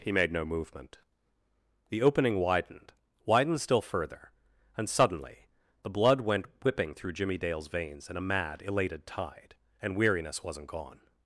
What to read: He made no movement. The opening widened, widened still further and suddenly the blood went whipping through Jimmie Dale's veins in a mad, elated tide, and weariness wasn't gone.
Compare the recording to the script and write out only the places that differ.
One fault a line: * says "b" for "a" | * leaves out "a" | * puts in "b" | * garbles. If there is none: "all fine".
all fine